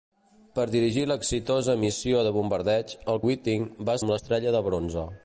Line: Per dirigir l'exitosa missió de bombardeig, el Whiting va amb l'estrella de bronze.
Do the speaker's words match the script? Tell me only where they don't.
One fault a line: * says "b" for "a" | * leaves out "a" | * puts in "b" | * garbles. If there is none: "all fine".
all fine